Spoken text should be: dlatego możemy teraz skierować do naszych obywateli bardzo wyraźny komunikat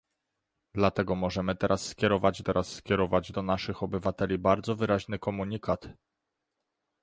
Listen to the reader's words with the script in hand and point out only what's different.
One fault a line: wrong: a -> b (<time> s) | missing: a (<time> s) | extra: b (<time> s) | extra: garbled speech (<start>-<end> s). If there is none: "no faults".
extra: teraz skierować (2.4 s)